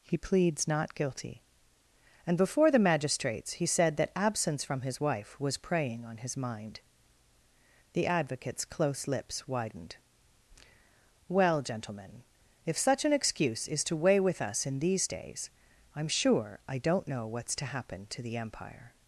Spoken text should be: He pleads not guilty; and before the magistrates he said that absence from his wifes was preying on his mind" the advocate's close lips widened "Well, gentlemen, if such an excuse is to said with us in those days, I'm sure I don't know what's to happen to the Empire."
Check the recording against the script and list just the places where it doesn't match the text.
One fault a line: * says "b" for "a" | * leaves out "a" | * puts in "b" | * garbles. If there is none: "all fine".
* says "wife" for "wifes"
* says "weigh" for "said"
* says "these" for "those"